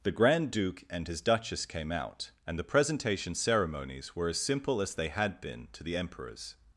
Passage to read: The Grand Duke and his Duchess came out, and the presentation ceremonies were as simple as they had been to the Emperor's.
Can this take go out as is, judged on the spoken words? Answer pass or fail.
pass